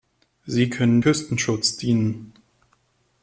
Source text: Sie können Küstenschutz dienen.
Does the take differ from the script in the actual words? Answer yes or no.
no